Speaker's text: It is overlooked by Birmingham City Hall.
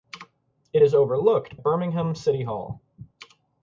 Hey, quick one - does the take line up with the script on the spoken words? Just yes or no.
no